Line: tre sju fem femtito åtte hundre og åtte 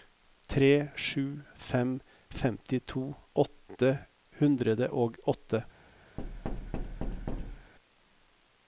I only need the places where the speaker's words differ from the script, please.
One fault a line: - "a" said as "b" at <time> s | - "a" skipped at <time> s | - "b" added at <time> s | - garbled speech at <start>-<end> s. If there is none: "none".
none